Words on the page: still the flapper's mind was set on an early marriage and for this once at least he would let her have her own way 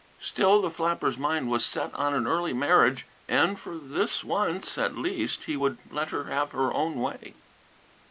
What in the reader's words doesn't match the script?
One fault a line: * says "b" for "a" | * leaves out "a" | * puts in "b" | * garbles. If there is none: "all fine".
all fine